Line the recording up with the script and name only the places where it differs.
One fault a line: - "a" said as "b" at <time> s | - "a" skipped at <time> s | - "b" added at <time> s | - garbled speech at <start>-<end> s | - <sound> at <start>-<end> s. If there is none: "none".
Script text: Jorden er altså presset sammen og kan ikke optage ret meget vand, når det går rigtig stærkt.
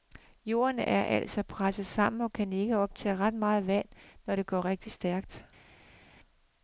none